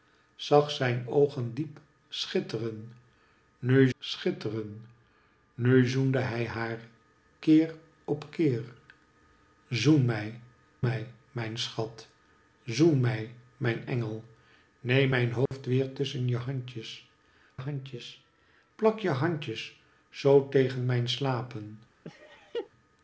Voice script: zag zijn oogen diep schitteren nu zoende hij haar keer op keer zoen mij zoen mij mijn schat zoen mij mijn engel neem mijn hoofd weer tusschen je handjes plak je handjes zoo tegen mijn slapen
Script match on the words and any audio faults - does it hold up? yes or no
no